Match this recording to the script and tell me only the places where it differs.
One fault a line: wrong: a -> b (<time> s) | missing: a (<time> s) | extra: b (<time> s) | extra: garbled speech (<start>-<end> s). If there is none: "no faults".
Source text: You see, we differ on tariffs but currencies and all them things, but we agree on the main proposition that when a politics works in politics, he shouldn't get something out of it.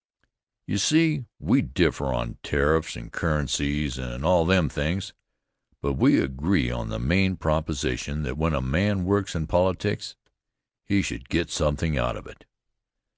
wrong: but -> and (3.0 s)
wrong: politics -> man (8.6 s)
wrong: shouldn't -> should (11.0 s)